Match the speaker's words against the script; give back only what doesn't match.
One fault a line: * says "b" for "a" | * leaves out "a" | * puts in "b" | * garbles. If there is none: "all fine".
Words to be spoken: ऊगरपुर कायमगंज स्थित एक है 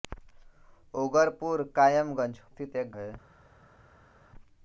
all fine